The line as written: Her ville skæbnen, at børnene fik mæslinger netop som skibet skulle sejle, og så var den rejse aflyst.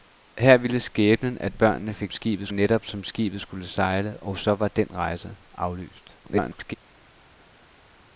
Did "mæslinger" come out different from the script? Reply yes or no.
yes